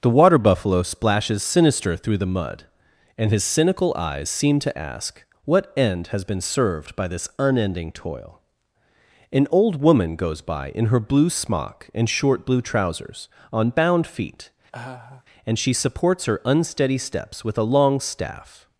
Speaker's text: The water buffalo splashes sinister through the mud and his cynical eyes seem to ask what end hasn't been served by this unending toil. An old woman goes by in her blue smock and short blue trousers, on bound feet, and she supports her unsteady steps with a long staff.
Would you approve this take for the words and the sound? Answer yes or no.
no